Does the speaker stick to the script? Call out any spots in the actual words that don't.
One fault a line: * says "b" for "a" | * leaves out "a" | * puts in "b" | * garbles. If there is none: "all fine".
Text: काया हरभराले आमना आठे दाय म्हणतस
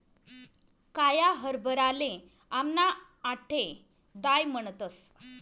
all fine